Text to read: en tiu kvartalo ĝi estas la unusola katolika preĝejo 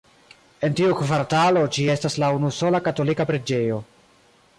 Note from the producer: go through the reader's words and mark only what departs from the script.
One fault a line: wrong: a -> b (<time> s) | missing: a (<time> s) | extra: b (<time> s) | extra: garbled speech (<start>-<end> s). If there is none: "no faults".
no faults